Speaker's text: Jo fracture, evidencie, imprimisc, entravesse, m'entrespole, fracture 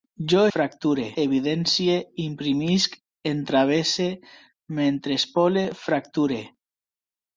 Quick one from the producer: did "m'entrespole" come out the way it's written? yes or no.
yes